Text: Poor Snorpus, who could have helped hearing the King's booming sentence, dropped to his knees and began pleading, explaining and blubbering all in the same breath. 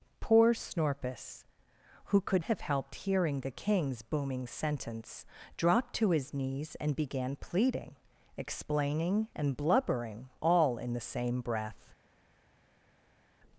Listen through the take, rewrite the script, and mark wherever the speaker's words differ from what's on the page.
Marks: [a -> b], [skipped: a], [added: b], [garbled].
Poor Snorpus, who could have helped hearing the King's booming sentence, dropped to his knees and began pleading, explaining and blubbering all in the same breath.